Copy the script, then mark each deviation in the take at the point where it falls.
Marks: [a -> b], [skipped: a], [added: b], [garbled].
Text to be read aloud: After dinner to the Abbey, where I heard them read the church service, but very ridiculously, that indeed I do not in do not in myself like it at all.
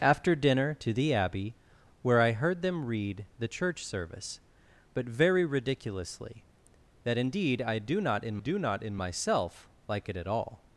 After dinner to the Abbey, where I heard them read the church service, but very ridiculously, that indeed I do not in do not in myself like it at all.